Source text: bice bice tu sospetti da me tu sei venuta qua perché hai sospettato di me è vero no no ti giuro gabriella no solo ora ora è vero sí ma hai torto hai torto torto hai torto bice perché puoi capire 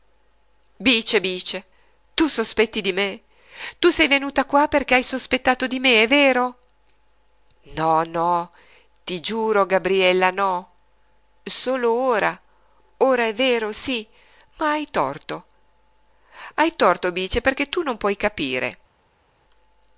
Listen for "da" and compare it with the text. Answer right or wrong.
wrong